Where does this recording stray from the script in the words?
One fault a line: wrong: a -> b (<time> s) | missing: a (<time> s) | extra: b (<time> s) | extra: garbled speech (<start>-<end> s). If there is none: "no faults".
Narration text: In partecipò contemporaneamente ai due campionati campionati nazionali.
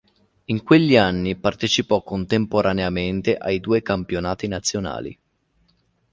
extra: quegli anni (0.6 s)
missing: campionati (4.5 s)